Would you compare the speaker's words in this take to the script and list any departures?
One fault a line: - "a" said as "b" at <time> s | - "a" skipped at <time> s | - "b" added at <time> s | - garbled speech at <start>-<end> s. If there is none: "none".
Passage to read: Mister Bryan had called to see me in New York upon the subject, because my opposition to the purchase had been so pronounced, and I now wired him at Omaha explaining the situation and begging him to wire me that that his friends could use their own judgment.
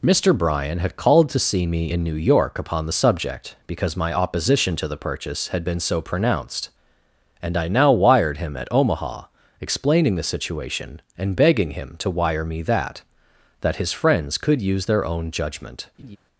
none